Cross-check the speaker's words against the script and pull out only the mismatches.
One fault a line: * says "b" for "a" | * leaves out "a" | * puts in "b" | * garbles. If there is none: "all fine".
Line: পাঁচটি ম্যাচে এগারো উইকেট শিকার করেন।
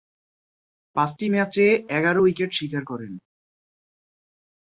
all fine